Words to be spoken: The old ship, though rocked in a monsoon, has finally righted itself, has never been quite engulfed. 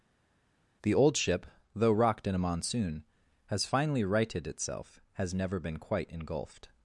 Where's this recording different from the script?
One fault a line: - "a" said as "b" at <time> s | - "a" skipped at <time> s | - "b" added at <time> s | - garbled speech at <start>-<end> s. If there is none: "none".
none